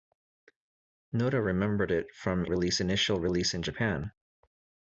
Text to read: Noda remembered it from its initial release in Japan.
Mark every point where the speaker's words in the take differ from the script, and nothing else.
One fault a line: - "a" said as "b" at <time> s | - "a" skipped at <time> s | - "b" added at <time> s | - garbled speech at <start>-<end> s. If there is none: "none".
- "its" said as "release" at 2.5 s